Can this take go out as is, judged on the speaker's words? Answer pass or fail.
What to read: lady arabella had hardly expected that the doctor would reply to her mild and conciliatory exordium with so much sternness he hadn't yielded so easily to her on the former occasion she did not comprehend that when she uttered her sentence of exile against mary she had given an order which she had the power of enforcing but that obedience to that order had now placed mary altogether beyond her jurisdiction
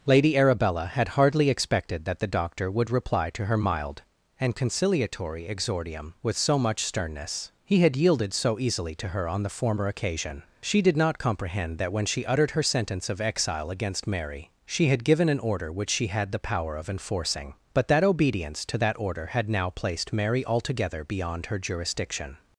fail